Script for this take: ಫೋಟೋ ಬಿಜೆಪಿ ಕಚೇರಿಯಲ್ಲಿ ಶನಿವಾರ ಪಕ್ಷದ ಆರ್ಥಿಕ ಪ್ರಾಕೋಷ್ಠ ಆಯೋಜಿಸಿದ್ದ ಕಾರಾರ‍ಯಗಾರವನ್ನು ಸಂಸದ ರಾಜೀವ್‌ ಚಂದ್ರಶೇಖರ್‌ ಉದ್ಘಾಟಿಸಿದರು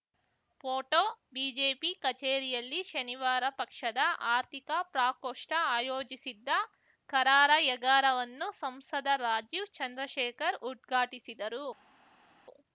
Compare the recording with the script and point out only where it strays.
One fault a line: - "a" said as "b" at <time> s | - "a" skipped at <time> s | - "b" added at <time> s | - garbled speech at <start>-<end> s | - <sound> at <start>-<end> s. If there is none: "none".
none